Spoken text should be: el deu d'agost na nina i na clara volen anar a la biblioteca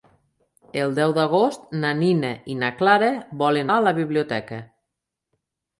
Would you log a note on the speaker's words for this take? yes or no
yes